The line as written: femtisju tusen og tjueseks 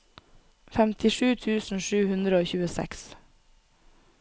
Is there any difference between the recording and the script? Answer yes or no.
yes